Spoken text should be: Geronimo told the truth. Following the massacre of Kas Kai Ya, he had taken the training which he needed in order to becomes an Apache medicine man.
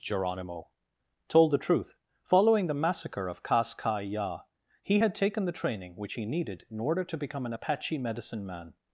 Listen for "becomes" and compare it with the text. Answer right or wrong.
wrong